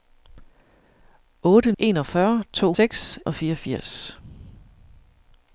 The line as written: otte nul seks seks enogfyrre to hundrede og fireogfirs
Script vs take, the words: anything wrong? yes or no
yes